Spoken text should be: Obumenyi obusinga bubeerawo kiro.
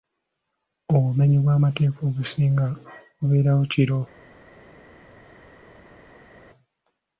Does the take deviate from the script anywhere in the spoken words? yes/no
yes